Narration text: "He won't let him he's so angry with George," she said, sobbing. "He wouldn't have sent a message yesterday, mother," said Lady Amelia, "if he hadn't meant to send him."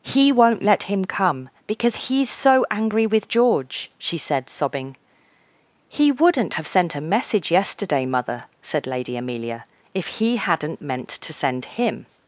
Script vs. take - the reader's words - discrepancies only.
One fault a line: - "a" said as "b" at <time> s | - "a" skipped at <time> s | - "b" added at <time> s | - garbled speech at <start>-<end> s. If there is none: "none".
- "come because" added at 1.1 s